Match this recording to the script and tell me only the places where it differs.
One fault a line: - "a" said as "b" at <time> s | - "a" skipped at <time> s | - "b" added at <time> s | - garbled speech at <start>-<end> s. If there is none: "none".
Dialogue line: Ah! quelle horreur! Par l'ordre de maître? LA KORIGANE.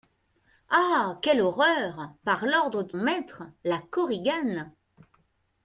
none